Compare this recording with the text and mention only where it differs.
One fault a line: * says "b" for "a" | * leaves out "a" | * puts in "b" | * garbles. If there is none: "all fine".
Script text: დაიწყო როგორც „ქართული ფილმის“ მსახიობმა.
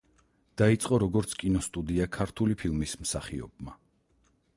* puts in "კინოსტუდია"